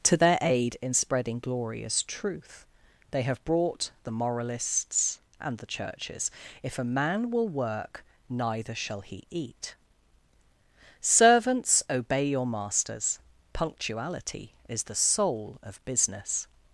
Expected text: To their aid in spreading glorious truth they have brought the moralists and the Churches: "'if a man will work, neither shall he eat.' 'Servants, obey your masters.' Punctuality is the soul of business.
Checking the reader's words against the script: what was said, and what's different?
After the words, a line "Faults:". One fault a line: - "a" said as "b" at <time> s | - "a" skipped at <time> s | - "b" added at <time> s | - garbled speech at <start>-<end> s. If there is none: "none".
To their aid in spreading glorious truth they have brought the moralists and the Churches: "'if a man will work, neither shall he eat.' 'Servants, obey your masters.' Punctuality is the soul of business.
Faults:
none